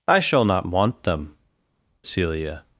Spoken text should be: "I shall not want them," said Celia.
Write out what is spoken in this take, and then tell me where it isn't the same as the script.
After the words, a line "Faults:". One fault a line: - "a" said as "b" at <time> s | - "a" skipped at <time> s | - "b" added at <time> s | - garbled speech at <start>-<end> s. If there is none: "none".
"I shall not want them," Celia.
Faults:
- "said" skipped at 1.4 s